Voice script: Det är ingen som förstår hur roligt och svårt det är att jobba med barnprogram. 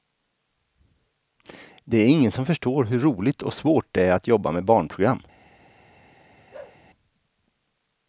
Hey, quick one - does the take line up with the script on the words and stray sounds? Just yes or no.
no